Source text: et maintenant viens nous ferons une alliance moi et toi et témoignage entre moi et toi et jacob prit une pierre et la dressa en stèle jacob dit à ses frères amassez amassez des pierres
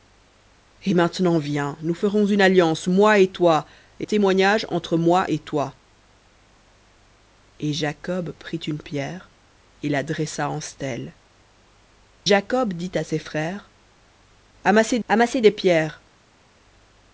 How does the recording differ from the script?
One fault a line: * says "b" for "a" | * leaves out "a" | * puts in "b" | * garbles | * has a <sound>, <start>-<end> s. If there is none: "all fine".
all fine